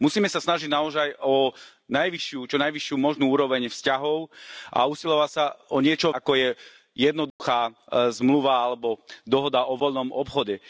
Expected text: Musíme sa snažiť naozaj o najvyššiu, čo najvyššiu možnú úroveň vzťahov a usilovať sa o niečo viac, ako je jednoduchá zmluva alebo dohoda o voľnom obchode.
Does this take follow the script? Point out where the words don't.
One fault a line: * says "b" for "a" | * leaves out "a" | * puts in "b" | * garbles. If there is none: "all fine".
* leaves out "viac"